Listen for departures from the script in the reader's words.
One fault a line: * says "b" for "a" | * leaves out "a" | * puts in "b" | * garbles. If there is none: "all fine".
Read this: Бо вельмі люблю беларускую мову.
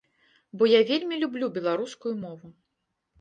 * puts in "я"